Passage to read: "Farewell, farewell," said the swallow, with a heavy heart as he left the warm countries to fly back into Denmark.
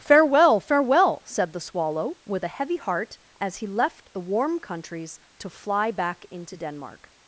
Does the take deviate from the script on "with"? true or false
false